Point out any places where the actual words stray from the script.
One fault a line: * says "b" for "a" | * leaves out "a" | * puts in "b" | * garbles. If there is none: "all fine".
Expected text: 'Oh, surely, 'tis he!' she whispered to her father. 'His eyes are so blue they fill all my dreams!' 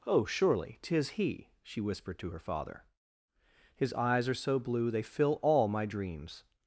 all fine